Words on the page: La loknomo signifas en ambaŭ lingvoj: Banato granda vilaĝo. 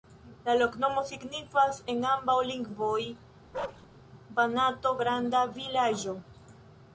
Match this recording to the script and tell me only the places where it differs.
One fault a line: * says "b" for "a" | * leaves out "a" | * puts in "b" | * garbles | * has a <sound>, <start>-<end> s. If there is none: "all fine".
* has a bark, 3.5-3.9 s